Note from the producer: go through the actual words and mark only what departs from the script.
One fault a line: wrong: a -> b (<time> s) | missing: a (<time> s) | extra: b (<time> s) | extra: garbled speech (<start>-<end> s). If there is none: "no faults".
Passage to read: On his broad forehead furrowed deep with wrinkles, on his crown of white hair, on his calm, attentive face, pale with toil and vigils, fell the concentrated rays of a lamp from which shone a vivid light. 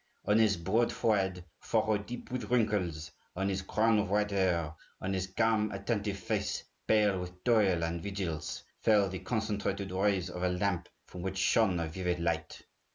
no faults